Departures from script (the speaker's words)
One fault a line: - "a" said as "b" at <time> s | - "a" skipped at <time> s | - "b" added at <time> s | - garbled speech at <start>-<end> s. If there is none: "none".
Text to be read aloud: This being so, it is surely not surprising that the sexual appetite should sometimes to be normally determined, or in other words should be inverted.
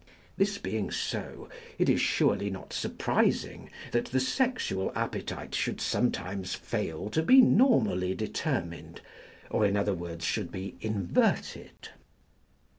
- "fail" added at 6.5 s